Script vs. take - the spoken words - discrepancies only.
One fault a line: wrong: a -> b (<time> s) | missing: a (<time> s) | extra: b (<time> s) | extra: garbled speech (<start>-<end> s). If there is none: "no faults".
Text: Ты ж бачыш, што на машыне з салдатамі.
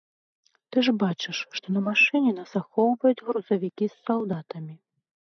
extra: нас ахоўваюць грузавікі (2.4 s)